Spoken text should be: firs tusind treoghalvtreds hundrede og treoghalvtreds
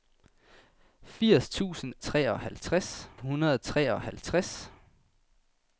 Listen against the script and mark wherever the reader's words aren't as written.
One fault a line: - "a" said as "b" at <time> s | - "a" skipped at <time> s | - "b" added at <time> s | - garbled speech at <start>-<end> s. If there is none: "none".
none